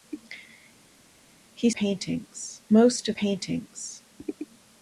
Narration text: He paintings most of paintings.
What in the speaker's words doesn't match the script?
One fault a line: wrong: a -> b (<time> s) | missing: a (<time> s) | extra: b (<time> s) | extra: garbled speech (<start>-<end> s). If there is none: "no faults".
no faults